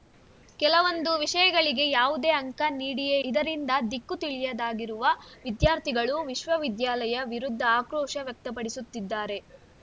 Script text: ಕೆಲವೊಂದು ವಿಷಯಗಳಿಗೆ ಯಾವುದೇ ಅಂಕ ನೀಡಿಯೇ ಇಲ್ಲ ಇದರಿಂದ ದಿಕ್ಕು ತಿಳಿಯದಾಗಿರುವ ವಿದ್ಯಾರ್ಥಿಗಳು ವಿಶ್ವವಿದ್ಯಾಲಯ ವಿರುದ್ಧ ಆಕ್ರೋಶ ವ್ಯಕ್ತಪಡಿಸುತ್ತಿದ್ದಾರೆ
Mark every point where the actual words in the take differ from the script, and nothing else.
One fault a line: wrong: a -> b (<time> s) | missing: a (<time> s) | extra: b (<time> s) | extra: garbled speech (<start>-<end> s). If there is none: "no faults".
missing: ಇಲ್ಲ (3.2 s)